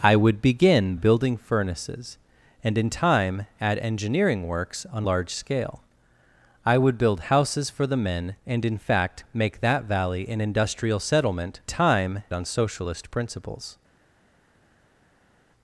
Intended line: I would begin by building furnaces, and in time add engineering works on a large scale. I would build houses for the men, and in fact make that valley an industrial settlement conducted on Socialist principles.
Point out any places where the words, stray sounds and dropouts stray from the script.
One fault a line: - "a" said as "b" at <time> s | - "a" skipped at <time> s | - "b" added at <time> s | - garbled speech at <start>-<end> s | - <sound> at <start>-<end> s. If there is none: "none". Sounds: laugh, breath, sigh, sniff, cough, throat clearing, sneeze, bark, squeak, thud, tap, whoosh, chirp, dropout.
- "by" skipped at 0.9 s
- "a" skipped at 5.1 s
- "conducted" said as "time" at 11.6 s